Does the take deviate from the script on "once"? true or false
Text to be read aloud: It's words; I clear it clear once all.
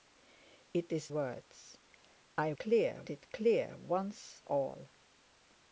false